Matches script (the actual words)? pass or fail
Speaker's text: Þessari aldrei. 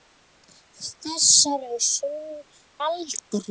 pass